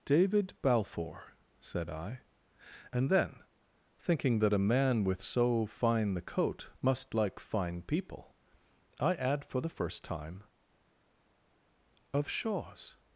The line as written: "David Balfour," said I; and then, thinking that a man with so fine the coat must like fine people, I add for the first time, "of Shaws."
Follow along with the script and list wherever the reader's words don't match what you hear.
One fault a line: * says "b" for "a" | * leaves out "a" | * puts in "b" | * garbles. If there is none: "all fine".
all fine